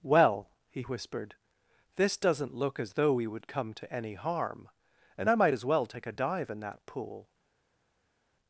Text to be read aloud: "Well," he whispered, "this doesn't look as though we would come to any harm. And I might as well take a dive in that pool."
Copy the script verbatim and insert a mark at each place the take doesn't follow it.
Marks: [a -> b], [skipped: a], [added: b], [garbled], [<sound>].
"Well," he whispered, "this doesn't look as though we would come to any harm. And I might as well take a dive in that pool."